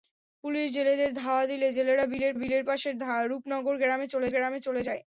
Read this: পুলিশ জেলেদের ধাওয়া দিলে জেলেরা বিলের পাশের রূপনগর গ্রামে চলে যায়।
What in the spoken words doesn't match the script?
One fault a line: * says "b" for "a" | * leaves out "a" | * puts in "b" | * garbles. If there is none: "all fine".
* puts in "বিলের"
* puts in "গ্রামে চলে"